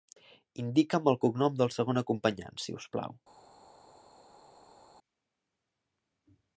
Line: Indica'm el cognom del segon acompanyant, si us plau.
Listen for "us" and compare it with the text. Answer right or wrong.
right